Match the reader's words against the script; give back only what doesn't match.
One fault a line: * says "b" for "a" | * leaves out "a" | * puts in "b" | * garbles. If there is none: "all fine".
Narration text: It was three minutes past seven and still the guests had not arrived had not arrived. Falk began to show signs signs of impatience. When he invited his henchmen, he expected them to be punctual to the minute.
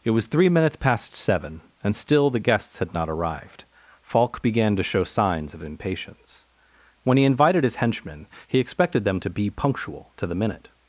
* leaves out "had not arrived"
* leaves out "signs"